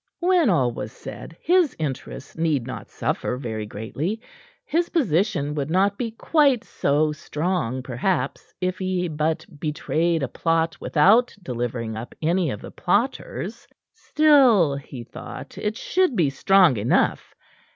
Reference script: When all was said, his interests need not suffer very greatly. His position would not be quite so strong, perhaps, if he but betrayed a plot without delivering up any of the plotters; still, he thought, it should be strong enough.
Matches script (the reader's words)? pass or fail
pass